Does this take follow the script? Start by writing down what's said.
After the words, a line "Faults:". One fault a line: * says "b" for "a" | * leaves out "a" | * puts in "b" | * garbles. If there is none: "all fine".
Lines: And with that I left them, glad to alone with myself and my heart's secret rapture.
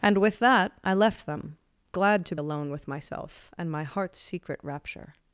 And with that I left them, glad to alone with myself and my heart's secret rapture.
Faults:
all fine